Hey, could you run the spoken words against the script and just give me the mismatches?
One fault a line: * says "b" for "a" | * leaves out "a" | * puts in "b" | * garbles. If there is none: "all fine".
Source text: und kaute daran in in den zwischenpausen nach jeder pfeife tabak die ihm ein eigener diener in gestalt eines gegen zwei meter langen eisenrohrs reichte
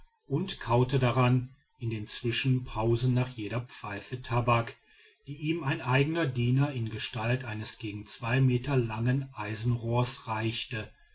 * leaves out "in"